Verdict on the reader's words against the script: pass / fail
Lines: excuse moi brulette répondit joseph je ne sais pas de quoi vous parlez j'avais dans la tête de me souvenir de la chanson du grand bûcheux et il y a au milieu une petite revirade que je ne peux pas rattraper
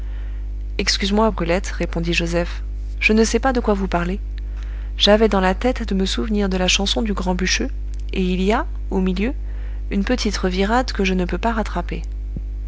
pass